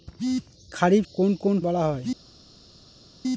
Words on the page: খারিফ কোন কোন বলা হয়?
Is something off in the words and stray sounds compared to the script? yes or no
no